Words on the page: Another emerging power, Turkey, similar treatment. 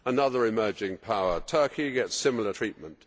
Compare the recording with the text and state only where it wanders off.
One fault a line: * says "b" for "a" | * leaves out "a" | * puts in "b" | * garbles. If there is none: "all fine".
* puts in "gets"